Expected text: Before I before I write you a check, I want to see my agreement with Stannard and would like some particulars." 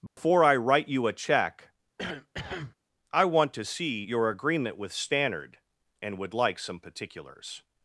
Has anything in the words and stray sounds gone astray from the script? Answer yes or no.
yes